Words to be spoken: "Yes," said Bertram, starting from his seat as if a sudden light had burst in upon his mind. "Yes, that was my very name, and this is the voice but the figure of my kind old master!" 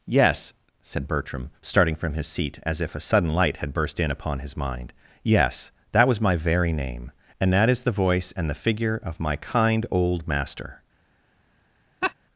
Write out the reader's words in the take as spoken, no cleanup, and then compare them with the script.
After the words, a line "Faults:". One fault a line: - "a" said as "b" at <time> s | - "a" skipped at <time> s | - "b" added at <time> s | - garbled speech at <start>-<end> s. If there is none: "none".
"Yes," said Bertram, starting from his seat as if a sudden light had burst in upon his mind. "Yes, that was my very name, and that is the voice and the figure of my kind old master!"
Faults:
- "this" said as "that" at 7.5 s
- "but" said as "and" at 8.4 s